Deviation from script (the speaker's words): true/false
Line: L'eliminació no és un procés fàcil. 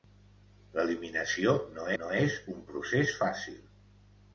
true